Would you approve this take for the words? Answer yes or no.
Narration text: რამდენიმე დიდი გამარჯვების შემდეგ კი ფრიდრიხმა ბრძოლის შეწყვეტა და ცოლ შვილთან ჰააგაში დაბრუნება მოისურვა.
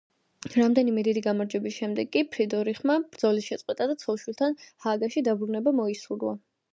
yes